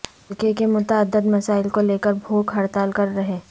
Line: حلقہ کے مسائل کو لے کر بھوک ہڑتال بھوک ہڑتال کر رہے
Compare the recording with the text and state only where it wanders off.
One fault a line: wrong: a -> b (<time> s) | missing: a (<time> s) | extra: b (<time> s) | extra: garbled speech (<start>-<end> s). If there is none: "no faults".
extra: متعدد (0.7 s)
missing: بھوک ہڑتال (2.9 s)